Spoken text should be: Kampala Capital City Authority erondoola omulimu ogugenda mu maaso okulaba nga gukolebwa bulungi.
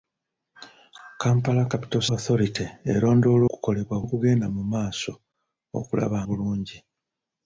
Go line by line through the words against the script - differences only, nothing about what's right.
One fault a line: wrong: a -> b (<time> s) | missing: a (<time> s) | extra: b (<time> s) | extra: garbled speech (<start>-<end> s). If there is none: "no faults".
missing: City (2.0 s)
wrong: omulimu -> gukolebwa (3.5 s)
missing: nga gukolebwa (6.2 s)